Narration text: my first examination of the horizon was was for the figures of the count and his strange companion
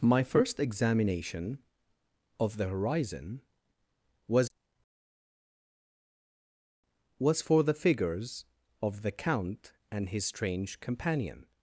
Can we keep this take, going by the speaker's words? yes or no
yes